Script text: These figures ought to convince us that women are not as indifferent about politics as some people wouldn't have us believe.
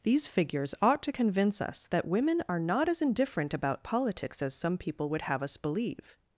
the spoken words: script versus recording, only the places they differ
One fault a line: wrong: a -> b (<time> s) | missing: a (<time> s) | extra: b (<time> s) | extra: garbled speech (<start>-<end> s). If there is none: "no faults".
wrong: wouldn't -> would (5.1 s)